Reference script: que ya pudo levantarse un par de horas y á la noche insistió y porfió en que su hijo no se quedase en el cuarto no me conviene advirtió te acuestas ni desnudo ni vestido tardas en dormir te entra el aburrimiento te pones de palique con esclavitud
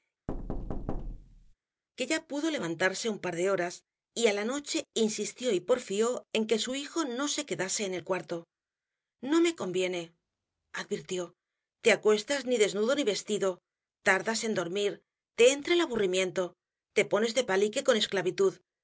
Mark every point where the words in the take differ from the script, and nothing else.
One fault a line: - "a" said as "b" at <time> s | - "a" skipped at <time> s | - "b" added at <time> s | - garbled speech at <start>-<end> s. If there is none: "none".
none